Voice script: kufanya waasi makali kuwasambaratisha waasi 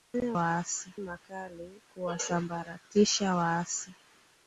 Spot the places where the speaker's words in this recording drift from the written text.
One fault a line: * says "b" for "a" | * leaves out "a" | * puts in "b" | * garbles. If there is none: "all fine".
all fine